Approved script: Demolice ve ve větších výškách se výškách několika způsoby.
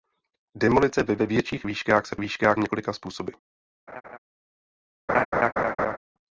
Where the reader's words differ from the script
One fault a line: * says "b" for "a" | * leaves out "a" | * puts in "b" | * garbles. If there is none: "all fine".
all fine